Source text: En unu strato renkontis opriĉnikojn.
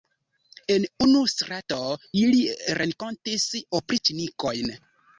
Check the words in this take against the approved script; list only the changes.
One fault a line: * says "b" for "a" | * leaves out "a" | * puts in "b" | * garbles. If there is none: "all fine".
* puts in "ili"